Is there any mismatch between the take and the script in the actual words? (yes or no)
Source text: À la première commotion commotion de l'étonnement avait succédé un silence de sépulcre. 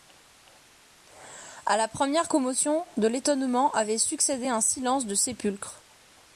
yes